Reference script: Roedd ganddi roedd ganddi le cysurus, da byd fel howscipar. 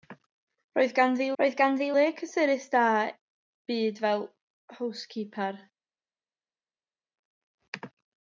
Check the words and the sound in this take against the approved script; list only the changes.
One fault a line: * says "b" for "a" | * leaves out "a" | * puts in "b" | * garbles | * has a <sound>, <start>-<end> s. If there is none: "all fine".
all fine